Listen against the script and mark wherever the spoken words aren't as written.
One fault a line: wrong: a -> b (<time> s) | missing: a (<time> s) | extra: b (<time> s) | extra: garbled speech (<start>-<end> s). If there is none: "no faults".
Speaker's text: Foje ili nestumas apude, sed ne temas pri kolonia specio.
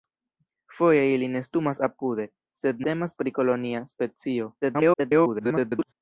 missing: ne (2.8 s)
extra: garbled speech (4.6-5.9 s)